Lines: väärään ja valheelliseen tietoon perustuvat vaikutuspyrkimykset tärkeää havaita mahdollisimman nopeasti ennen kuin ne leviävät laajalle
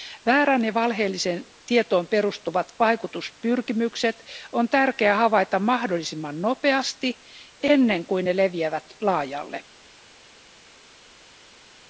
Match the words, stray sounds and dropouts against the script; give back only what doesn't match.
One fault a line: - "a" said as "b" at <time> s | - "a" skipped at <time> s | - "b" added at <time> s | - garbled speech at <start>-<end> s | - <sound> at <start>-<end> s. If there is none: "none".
- "on" added at 4.5 s